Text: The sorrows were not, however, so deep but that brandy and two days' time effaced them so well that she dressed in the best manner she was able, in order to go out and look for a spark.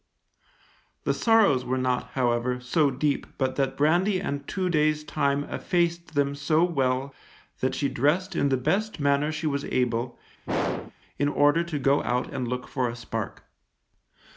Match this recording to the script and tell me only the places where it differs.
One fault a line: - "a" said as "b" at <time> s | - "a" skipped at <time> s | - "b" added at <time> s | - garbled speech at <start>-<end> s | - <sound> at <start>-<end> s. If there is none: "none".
- throat clearing at 10.5-10.9 s